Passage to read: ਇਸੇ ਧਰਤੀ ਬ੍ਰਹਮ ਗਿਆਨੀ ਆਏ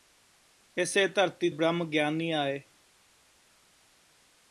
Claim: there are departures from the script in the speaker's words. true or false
false